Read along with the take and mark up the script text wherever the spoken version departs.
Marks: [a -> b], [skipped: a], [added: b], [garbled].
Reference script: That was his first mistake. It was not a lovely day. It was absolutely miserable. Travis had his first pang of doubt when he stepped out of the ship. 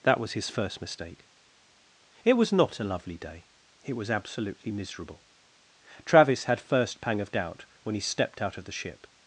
That was his first mistake. It was not a lovely day. It was absolutely miserable. Travis had [skipped: his] first pang of doubt when he stepped out of the ship.